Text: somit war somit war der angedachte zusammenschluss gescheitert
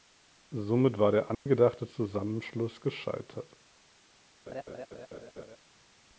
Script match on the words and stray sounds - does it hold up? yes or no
no